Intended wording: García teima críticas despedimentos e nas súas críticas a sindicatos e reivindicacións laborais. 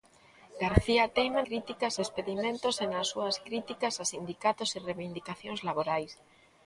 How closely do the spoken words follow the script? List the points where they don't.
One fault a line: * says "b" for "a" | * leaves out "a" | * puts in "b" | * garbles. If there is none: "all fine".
all fine